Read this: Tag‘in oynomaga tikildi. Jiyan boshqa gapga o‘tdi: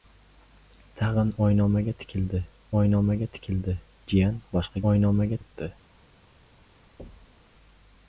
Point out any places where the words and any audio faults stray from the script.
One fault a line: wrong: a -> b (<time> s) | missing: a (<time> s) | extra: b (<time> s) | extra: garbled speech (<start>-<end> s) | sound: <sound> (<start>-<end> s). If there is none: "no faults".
extra: oynomaga tikildi (2.8 s)
wrong: gapga -> oynomaga (4.9 s)
sound: thud (7.0-7.5 s)